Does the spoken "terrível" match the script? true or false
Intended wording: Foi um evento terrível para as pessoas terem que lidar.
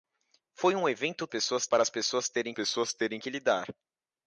false